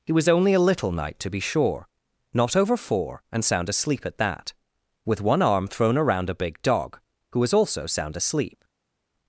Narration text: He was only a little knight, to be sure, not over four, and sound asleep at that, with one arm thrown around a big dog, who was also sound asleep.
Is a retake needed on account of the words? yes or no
no